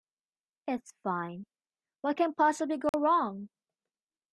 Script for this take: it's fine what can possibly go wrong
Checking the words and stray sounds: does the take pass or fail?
fail